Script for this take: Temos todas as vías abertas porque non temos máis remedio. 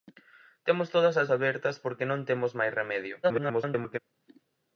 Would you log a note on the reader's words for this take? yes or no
yes